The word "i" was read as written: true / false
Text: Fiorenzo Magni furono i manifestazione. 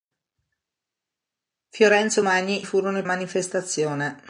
true